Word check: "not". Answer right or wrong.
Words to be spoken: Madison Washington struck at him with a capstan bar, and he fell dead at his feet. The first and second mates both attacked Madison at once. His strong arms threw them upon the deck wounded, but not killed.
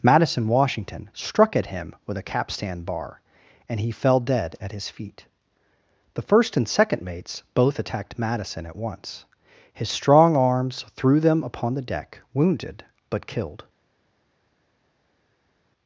wrong